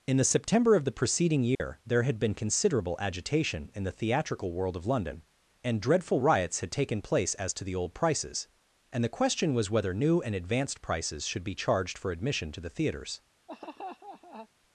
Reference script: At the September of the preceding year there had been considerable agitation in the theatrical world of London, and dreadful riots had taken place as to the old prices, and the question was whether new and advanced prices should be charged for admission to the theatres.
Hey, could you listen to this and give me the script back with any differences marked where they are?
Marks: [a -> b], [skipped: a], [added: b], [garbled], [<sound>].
[At -> In] the September of the preceding year [dropout] there had been considerable agitation in the theatrical world of London, and dreadful riots had taken place as to the old prices, and the question was whether new and advanced prices should be charged for admission to the theatres. [laugh]